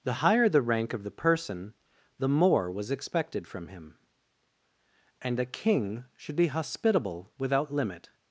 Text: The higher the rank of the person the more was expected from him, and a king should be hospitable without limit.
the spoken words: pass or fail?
pass